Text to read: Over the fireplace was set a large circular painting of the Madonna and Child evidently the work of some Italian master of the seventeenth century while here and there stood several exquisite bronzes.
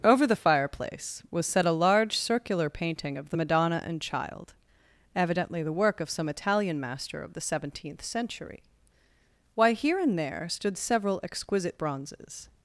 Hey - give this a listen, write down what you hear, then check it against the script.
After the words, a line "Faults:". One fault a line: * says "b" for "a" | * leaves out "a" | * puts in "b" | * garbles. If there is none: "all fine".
Over the fireplace was set a large circular painting of the Madonna and Child evidently the work of some Italian master of the seventeenth century why here and there stood several exquisite bronzes.
Faults:
* says "why" for "while"